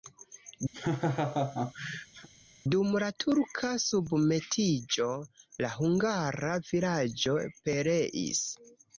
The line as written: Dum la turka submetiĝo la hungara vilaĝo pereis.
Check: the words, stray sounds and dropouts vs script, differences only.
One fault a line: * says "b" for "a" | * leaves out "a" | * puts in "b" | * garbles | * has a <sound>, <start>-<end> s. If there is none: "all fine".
* has a laugh, 0.7-2.3 s